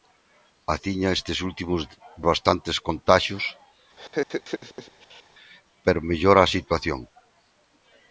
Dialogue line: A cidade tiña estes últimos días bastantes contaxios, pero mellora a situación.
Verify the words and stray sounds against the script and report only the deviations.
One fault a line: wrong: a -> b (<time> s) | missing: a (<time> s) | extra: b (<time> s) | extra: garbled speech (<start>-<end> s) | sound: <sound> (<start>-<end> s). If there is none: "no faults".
missing: cidade (0.8 s)
missing: días (1.8 s)
sound: laugh (4.0-5.2 s)